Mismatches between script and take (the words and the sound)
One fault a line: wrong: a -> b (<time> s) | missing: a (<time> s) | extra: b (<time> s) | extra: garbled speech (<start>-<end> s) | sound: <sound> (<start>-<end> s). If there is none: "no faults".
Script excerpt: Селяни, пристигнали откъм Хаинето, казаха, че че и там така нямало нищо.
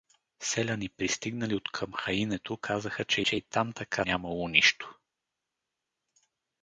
no faults